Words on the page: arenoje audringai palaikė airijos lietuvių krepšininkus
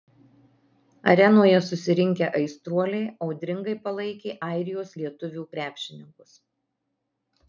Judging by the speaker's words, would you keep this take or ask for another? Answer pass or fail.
fail